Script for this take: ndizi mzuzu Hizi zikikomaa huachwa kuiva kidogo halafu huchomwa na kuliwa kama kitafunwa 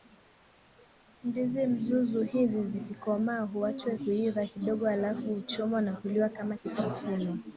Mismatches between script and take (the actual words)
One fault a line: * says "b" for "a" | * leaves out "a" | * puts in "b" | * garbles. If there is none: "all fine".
all fine